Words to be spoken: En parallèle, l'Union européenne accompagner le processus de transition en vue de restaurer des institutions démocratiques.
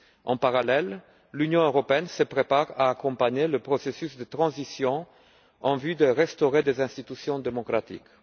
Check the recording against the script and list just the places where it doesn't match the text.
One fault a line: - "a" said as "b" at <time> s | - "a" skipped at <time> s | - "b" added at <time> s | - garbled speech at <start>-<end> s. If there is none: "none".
- "se prépare à" added at 2.1 s